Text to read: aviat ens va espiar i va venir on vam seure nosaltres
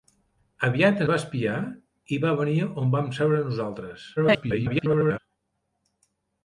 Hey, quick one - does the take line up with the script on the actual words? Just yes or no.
no